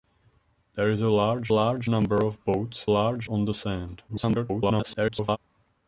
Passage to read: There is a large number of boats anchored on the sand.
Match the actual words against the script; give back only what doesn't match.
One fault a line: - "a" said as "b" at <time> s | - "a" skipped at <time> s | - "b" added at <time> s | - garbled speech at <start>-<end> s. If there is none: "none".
- "large" added at 1.5 s
- "anchored" said as "large" at 2.9 s
- garbled speech at 4.1-5.4 s